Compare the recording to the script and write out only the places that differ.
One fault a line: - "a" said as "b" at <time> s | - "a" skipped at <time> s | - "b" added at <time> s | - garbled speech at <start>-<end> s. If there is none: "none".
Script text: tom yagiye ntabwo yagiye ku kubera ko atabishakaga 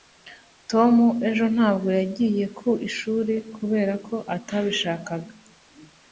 - "yagiye" said as "ejo" at 1.3 s
- "ishuri" added at 2.9 s